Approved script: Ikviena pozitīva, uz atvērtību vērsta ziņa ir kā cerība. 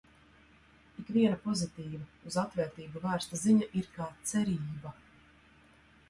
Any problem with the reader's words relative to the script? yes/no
no